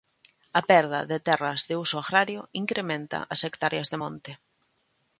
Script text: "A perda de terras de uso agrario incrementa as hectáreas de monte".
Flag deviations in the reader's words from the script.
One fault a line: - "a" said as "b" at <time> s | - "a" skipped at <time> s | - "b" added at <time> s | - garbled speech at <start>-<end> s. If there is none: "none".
none